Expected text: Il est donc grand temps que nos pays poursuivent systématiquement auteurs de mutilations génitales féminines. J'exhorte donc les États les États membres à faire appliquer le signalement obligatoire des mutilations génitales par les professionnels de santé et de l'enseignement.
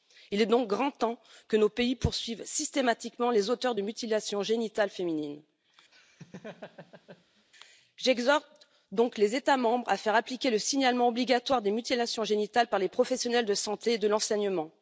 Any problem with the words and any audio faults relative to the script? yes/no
yes